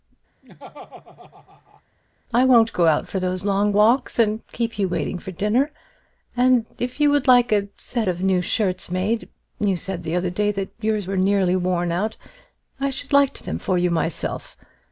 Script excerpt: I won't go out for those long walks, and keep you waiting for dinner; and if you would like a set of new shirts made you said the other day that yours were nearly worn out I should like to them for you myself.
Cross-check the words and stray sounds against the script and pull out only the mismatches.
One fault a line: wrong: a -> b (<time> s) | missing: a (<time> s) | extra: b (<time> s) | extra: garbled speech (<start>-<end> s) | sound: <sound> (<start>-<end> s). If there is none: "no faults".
sound: laugh (0.4-1.8 s)